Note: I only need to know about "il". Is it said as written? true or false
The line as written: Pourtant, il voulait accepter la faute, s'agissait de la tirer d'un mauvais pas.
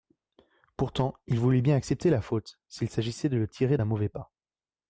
true